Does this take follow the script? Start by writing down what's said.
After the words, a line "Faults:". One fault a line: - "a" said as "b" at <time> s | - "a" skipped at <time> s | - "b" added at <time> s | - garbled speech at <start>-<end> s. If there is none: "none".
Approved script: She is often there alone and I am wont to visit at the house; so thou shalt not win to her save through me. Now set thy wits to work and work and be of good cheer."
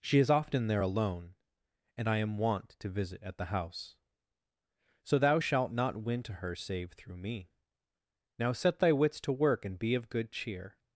She is often there alone and I am wont to visit at the house; so thou shalt not win to her save through me. Now set thy wits to work and be of good cheer."
Faults:
- "work and" skipped at 9.8 s